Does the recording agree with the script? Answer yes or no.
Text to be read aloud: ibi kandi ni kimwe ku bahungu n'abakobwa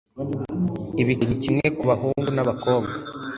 no